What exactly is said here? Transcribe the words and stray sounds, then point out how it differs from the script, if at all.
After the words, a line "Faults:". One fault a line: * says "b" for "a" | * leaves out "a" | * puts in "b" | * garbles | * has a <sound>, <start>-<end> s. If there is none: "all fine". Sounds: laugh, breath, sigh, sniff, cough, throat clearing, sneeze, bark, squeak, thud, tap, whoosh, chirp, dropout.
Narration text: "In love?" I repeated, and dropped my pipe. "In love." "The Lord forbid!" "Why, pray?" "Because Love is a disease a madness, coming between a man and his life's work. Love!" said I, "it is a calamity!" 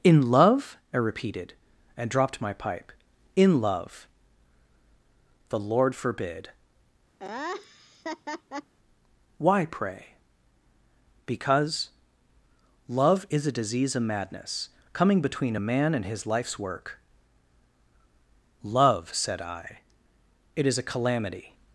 "In love?" I repeated, and dropped my pipe. "In love." "The Lord forbid!" "Why, pray?" "Because Love is a disease of madness, coming between a man and his life's work. Love!" said I, "it is a calamity!"
Faults:
* has a laugh, 7.2-8.7 s
* says "of" for "a"